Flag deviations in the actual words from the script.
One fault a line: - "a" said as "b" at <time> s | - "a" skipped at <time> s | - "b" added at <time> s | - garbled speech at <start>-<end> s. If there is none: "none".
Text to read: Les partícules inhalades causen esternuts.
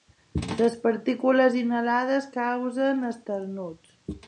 none